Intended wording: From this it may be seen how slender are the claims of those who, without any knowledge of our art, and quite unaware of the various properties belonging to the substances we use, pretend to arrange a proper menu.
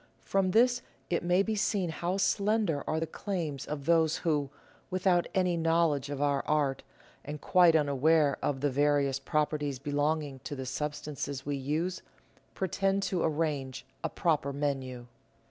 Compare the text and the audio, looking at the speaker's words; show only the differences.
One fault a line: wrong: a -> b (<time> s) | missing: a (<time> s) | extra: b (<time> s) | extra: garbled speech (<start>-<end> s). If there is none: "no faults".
no faults